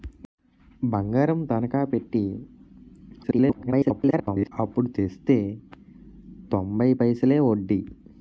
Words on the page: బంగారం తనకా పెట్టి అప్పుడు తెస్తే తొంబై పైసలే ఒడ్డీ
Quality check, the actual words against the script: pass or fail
fail